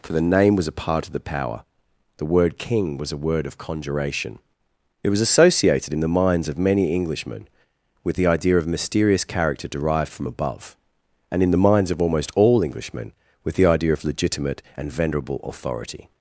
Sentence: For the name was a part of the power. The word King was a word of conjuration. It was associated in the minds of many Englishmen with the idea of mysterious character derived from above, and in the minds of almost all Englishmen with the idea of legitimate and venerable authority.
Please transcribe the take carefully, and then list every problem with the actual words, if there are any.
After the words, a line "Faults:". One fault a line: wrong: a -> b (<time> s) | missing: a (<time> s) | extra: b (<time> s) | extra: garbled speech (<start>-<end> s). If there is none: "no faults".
For the name was a part of the power. The word King was a word of conjuration. It was associated in the minds of many Englishmen with the idea of mysterious character derived from above, and in the minds of almost all Englishmen with the idea of legitimate and venerable authority.
Faults:
no faults